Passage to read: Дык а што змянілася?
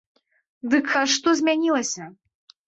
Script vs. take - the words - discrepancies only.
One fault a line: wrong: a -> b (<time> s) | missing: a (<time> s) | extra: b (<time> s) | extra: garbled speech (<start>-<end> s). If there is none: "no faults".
no faults